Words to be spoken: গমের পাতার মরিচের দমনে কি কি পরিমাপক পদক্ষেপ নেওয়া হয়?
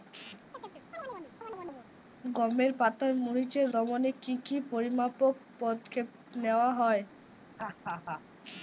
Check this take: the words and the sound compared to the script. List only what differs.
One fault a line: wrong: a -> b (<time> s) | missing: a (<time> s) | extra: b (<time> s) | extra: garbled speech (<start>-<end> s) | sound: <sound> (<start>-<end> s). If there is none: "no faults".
sound: chirp (0.5-1.9 s)
sound: laugh (7.6-8.2 s)